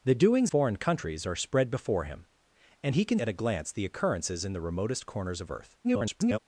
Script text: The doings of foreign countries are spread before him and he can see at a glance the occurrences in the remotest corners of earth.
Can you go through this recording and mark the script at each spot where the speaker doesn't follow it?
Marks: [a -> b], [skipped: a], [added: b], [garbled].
The doings [skipped: of] foreign countries are spread before him and he can [skipped: see] at a glance the occurrences in the remotest corners of earth. [garbled]